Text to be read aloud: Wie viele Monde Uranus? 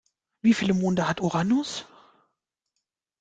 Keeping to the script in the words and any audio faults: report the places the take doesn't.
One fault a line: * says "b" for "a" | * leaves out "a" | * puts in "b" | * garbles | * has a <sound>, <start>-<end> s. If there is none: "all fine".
* puts in "hat"